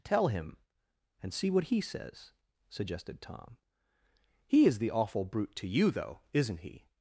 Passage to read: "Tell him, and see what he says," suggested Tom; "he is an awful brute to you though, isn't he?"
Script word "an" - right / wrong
wrong